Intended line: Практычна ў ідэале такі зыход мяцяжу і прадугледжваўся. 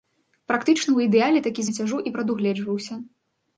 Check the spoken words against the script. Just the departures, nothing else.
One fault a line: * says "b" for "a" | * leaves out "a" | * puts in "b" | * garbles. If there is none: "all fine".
* leaves out "зыход"